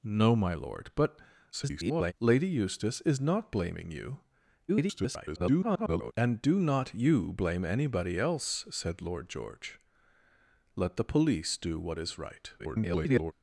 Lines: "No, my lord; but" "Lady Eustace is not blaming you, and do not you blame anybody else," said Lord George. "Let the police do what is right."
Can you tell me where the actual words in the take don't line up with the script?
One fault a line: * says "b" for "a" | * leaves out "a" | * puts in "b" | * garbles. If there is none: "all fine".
* garbles
* garbles
* garbles